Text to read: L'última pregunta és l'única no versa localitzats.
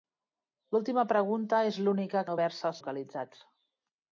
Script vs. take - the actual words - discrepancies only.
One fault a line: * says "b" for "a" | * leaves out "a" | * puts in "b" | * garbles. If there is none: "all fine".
all fine